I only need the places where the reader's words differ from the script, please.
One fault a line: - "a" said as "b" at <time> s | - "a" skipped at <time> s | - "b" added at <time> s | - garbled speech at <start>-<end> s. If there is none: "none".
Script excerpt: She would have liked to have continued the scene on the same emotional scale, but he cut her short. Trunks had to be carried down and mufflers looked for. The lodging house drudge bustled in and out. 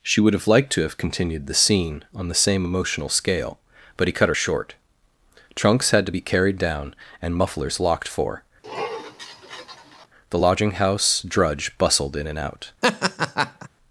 - "looked" said as "locked" at 7.8 s